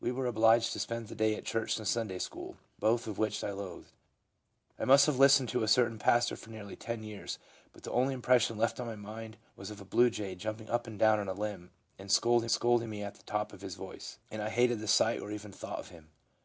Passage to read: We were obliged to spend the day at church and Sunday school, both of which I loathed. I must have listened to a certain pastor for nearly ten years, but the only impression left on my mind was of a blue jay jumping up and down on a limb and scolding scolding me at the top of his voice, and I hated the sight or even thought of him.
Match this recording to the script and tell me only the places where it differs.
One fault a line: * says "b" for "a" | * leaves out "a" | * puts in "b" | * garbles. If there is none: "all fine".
all fine